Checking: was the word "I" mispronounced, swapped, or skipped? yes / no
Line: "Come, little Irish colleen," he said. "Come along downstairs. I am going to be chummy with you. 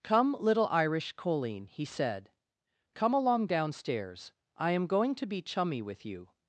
no